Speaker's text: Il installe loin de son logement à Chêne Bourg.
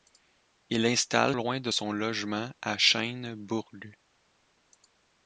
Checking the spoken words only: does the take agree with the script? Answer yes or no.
yes